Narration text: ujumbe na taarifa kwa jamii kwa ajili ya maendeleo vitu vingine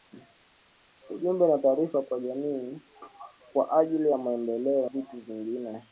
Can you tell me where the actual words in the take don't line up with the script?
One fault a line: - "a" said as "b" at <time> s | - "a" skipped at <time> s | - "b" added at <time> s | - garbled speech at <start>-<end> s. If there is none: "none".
none